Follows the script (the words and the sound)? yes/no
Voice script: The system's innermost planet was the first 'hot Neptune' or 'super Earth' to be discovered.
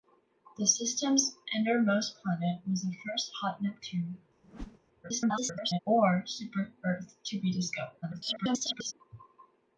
no